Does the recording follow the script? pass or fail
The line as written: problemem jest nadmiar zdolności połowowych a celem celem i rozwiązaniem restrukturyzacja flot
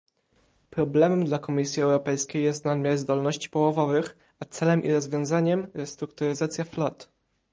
fail